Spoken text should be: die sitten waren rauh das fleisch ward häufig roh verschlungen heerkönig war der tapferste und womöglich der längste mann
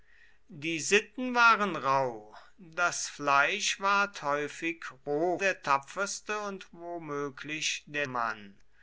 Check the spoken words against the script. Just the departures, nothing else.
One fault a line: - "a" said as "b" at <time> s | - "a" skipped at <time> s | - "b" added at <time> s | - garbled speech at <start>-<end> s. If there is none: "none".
- "verschlungen heerkönig war" skipped at 5.4 s
- "längste" skipped at 8.1 s